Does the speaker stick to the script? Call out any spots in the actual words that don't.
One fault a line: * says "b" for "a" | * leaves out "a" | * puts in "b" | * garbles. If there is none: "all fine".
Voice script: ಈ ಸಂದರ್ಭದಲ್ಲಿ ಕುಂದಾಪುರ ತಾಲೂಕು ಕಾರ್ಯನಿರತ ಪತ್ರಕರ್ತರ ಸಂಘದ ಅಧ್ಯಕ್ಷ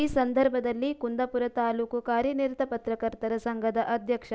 all fine